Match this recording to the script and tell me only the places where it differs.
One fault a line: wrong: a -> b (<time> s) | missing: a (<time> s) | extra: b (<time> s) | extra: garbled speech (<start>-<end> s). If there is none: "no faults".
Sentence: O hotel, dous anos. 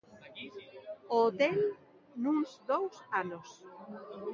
extra: nuns (2.2 s)